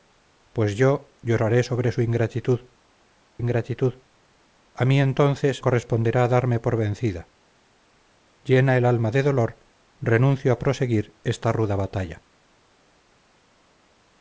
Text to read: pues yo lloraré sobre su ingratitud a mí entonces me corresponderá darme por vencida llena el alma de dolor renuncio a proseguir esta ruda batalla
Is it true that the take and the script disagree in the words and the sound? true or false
true